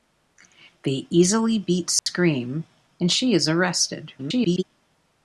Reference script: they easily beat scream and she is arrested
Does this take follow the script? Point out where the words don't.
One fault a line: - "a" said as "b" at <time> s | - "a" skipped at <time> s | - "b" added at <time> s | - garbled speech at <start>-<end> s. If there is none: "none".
- garbled speech at 4.2-4.6 s